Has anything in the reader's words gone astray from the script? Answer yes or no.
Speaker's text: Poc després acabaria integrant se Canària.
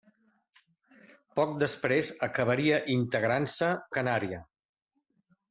no